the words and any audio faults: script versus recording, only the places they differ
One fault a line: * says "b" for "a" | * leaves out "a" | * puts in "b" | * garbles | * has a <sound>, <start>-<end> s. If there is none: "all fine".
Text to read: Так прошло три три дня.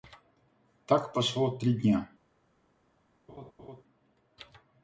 * leaves out "три"
* has a laugh, 3.3-3.8 s